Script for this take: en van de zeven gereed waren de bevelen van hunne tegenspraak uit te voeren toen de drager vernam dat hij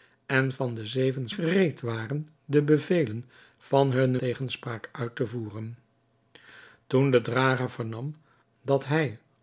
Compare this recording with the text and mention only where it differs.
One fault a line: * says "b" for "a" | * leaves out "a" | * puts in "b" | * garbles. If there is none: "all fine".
all fine